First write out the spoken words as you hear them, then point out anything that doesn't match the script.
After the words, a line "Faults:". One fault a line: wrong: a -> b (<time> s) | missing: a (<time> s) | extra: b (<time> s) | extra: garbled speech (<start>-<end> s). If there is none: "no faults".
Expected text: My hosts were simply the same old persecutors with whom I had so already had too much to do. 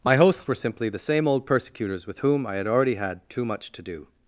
My hosts were simply the same old persecutors with whom I had already had too much to do.
Faults:
missing: so (2.7 s)